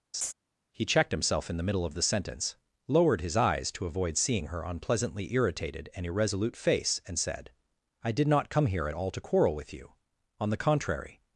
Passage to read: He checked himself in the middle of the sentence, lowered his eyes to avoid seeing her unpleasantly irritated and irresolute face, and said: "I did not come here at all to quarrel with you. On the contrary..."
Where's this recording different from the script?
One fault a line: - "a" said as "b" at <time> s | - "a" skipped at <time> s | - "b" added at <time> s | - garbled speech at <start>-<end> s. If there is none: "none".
none